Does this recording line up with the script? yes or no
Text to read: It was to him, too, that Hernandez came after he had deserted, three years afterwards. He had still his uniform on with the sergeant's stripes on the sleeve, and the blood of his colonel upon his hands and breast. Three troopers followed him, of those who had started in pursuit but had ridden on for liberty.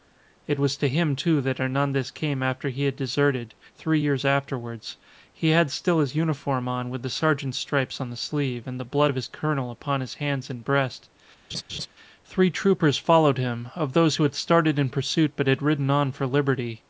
yes